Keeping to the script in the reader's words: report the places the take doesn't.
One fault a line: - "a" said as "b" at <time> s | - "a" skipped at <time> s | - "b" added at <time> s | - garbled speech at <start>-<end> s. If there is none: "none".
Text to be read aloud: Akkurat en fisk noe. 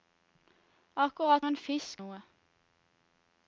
none